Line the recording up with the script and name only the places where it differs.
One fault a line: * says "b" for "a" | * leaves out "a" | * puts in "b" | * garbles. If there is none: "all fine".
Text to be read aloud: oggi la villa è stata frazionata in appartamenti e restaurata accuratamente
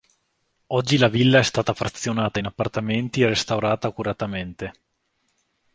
all fine